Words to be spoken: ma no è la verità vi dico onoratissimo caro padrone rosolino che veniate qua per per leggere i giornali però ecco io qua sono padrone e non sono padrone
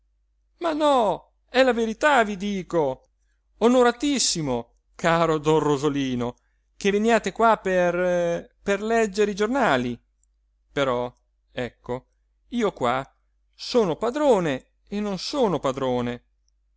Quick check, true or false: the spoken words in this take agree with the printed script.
false